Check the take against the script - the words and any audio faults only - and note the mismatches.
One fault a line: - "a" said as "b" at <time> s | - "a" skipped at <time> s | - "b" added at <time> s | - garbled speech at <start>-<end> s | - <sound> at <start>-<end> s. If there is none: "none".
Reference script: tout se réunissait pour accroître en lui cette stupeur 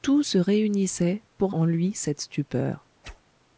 - "accroître" skipped at 1.6 s
- whoosh at 3.0-3.2 s